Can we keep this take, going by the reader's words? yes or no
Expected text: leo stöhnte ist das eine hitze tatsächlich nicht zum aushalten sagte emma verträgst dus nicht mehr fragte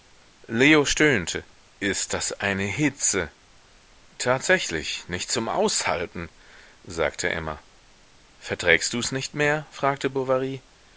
yes